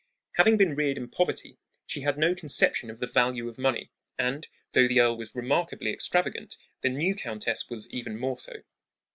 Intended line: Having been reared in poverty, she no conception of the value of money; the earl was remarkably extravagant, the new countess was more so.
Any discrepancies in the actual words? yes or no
yes